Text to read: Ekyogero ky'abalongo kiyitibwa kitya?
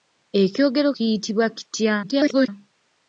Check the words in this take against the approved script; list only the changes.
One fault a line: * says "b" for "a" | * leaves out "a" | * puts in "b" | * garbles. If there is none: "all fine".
* leaves out "ky'abalongo"
* garbles